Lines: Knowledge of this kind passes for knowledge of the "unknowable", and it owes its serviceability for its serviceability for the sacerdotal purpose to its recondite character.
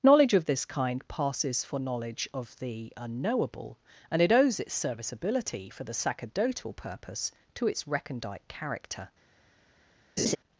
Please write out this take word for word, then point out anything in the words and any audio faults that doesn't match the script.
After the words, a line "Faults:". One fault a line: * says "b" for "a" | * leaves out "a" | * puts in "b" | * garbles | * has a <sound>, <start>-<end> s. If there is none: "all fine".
Knowledge of this kind passes for knowledge of the "unknowable", and it owes its serviceability for the sacerdotal purpose to its recondite character.
Faults:
* leaves out "its serviceability for"
* has a laugh, 10.2-10.4 s